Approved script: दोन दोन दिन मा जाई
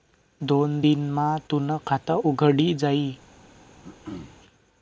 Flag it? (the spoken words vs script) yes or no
yes